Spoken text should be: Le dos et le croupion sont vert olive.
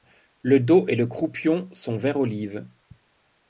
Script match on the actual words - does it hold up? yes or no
yes